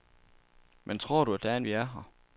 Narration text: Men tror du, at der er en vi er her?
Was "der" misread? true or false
false